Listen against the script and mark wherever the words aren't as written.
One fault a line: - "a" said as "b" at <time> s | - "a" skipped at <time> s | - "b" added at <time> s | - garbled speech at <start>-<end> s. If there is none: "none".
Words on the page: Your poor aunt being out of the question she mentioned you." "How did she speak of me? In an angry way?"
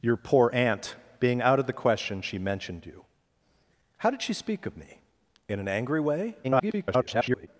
- garbled speech at 6.4-7.5 s